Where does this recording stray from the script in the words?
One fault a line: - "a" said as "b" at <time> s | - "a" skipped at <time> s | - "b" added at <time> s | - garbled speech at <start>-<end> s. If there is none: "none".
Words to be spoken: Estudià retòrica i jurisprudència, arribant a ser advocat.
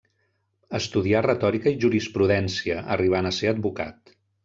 none